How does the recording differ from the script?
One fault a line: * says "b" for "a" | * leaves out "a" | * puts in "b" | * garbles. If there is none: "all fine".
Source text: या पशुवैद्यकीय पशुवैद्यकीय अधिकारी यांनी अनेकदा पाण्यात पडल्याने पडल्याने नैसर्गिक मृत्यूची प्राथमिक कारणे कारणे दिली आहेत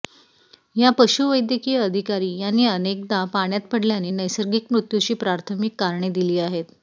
* leaves out "पशुवैद्यकीय"
* leaves out "पडल्याने"
* leaves out "कारणे"